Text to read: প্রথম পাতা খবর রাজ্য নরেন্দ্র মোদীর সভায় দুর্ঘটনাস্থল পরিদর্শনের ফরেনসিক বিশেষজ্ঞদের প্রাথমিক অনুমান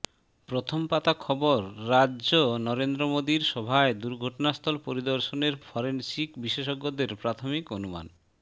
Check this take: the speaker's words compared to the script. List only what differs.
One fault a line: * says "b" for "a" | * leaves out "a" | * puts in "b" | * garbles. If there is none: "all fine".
all fine